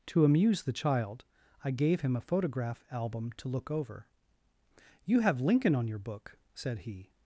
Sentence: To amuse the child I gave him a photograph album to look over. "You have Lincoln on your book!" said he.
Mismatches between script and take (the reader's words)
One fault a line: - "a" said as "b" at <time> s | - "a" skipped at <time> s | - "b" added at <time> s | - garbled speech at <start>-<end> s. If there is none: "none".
none